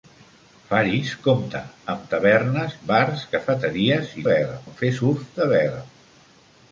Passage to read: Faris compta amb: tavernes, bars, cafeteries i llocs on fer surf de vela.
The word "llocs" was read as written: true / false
false